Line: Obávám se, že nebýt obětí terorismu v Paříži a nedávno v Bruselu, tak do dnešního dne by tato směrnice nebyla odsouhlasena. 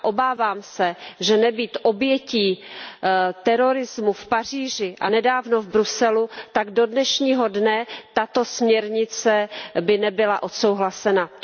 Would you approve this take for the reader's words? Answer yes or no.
yes